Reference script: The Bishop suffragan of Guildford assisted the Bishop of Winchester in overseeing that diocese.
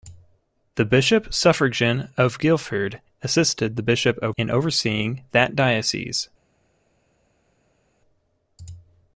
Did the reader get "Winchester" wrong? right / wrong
wrong